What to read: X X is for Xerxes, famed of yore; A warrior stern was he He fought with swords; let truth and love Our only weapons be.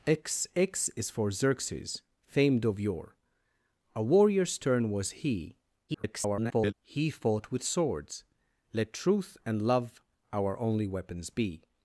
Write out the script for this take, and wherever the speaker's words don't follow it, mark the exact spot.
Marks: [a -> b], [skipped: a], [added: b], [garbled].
X X is for Xerxes, famed of yore; A warrior stern was he [garbled] He fought with swords; let truth and love Our only weapons be.